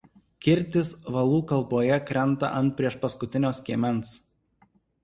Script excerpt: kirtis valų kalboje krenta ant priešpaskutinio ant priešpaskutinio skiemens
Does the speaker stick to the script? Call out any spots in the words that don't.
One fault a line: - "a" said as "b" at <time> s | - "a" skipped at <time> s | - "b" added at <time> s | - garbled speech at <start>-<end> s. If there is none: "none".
- "ant priešpaskutinio" skipped at 3.5 s